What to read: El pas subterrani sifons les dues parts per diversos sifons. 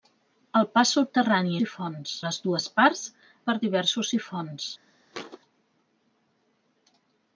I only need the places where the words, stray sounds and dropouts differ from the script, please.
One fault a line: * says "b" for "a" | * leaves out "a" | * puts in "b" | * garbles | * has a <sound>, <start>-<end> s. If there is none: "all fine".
* has a thud, 5.1-5.4 s